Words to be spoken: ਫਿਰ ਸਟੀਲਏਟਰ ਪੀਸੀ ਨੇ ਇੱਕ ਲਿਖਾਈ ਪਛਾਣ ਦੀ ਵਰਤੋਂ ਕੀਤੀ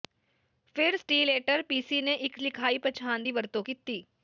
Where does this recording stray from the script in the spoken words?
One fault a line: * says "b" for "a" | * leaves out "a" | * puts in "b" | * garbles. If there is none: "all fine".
all fine